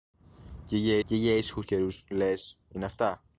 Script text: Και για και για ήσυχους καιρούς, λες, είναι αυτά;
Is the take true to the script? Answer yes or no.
yes